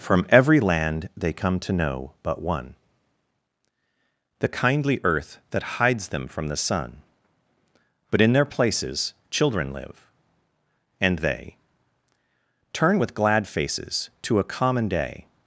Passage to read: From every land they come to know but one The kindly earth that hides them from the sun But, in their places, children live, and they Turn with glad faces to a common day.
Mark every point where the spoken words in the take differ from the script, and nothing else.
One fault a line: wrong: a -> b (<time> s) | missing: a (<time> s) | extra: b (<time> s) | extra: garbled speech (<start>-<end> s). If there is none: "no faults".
no faults